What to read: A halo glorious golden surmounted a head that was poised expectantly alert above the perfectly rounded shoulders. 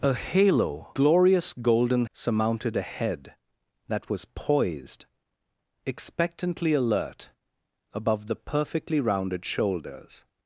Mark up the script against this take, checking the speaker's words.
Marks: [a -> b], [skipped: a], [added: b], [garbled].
A halo glorious golden surmounted a head that was poised expectantly alert above the perfectly rounded shoulders.